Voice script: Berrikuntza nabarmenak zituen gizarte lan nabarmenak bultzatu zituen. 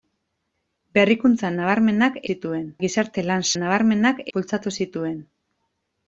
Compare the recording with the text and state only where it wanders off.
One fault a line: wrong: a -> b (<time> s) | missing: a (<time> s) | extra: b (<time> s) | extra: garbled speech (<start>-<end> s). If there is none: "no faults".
no faults